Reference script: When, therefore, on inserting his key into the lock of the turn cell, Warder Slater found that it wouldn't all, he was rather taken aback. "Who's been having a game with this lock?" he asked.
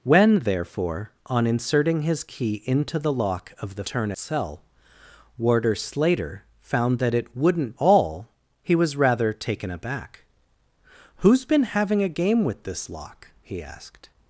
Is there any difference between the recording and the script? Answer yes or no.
no